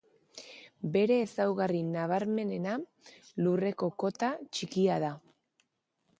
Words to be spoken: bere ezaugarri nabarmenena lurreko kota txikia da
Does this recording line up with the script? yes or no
yes